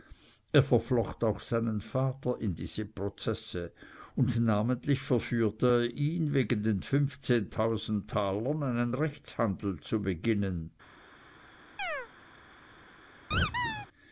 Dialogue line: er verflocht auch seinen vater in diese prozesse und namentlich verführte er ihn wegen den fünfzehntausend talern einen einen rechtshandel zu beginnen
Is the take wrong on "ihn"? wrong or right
right